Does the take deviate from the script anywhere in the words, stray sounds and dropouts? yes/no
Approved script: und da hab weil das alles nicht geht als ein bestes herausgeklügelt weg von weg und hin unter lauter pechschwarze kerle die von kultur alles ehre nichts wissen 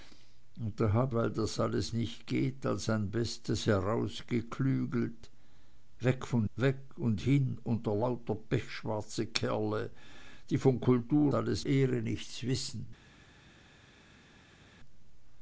no